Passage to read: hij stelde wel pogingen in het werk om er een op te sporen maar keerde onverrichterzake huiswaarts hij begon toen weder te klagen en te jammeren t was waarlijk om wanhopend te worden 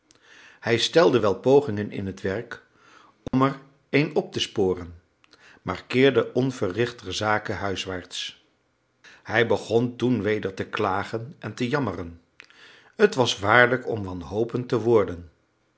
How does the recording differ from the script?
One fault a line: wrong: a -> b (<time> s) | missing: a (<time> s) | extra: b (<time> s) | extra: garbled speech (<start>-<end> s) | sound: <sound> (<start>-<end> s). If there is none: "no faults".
sound: dropout (3.3-3.3 s)